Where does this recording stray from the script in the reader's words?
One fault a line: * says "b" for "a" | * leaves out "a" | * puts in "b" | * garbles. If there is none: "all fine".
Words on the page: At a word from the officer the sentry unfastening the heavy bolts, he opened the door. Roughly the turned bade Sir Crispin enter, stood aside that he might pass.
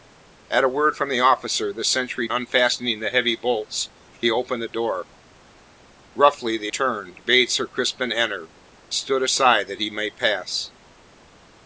all fine